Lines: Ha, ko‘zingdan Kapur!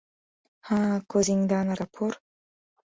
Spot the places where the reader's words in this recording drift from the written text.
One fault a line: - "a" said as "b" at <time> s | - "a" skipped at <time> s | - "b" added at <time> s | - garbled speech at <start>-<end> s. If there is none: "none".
none